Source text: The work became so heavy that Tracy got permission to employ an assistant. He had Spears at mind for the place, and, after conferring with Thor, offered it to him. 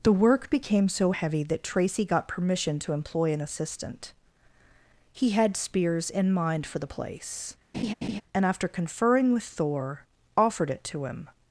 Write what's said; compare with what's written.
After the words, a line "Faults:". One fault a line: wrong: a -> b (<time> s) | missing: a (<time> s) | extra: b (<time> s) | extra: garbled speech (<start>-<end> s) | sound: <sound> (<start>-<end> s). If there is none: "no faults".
The work became so heavy that Tracy got permission to employ an assistant. He had Spears in mind for the place, and, after conferring with Thor, offered it to him.
Faults:
wrong: at -> in (6.1 s)
sound: laugh (7.7-8.2 s)